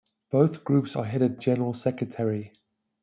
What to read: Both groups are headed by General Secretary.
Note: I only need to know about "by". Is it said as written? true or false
false